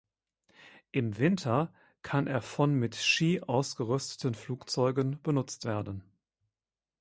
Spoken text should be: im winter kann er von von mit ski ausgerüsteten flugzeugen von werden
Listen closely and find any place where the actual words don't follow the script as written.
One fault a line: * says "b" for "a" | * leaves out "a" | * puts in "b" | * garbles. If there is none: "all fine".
* leaves out "von"
* says "benutzt" for "von"